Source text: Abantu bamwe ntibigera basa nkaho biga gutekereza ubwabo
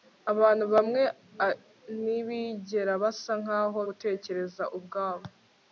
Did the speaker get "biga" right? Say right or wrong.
wrong